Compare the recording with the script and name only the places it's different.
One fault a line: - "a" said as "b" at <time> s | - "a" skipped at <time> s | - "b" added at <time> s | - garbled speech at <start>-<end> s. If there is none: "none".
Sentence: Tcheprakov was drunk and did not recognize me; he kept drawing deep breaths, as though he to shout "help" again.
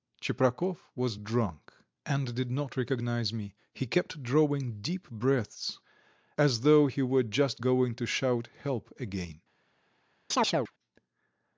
- "were just going" added at 7.0 s